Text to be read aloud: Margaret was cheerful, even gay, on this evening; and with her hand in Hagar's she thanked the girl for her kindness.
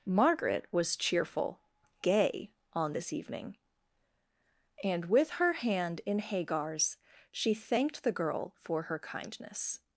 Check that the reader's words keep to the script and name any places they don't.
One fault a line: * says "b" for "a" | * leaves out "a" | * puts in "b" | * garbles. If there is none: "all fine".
* leaves out "even"